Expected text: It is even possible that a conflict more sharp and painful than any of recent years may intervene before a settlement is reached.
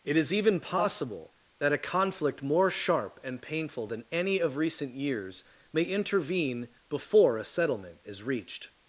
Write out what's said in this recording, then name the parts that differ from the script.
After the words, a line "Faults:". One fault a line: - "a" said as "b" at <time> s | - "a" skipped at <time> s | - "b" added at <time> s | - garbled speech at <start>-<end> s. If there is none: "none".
It is even possible that a conflict more sharp and painful than any of recent years may intervene before a settlement is reached.
Faults:
none